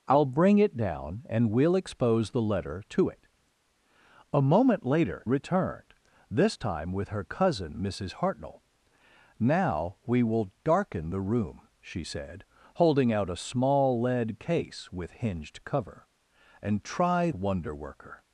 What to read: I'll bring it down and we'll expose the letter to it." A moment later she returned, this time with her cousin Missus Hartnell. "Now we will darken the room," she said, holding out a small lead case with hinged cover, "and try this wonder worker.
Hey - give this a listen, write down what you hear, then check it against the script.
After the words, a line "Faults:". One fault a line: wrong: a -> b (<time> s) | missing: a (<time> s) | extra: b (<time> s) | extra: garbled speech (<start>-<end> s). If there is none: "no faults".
I'll bring it down and we'll expose the letter to it." A moment later returned, this time with her cousin Missus Hartnell. "Now we will darken the room," she said, holding out a small lead case with hinged cover, "and try wonder worker.
Faults:
missing: she (5.3 s)
missing: this (17.3 s)